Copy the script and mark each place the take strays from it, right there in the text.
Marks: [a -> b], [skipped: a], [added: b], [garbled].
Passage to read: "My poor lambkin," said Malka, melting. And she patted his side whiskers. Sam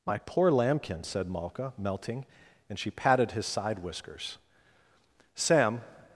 "My poor lambkin," said Malka, melting. And she patted his side whiskers. Sam